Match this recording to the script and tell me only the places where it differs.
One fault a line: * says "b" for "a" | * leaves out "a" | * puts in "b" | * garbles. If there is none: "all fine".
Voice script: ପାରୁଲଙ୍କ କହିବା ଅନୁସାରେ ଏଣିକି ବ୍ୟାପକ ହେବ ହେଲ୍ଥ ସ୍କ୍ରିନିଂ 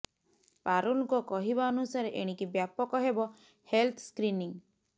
all fine